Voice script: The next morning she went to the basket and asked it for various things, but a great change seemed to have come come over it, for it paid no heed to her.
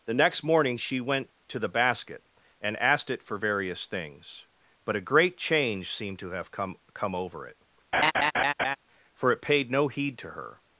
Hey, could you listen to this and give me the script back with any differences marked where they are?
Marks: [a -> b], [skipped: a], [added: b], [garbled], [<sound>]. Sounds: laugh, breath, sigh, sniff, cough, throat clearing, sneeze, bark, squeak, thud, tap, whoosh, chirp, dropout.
The next morning she went to the basket and asked it for various things, but a great change seemed to have come come over it, [laugh] for it paid no heed to her.